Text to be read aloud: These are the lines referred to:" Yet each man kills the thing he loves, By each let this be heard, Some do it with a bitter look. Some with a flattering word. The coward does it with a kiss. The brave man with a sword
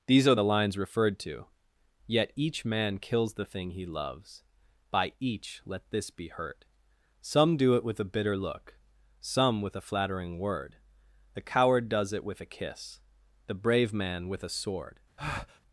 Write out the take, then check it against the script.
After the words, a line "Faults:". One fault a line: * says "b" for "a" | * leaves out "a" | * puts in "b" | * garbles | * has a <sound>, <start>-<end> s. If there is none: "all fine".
These are the lines referred to:" Yet each man kills the thing he loves, By each let this be hurt, Some do it with a bitter look. Some with a flattering word. The coward does it with a kiss. The brave man with a sword
Faults:
* says "hurt" for "heard"
* has a breath, 15.2-15.6 s